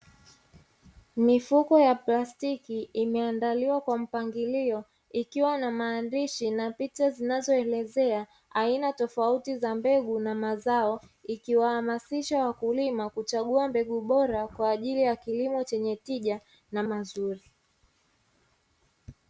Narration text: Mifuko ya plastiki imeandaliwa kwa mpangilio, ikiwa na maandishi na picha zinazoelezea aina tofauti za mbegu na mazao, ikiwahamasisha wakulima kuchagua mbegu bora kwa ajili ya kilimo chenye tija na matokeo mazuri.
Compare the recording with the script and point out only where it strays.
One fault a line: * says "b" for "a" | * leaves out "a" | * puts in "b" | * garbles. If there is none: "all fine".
* leaves out "matokeo"